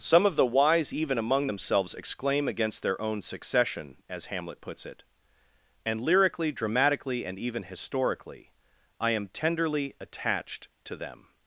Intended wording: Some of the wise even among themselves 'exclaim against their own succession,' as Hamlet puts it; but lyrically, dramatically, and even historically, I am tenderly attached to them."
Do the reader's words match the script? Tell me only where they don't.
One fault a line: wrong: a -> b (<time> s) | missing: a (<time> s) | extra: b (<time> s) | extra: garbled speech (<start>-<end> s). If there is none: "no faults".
wrong: but -> and (5.8 s)